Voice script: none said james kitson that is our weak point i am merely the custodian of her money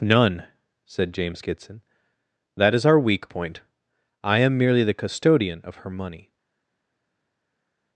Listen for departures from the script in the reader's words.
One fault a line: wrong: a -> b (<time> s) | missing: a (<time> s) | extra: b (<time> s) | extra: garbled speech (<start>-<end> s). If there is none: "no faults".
no faults